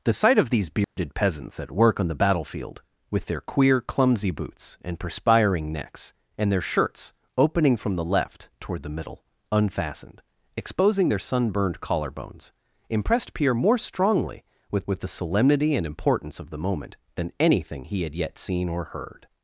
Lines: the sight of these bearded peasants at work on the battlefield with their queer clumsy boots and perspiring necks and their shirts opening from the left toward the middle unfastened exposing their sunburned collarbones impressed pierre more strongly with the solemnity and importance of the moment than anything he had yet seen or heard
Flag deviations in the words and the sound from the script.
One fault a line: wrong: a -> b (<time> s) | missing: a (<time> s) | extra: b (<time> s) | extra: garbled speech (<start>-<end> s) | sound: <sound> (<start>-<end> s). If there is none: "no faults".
sound: dropout (0.8-1.0 s)
extra: with (14.9 s)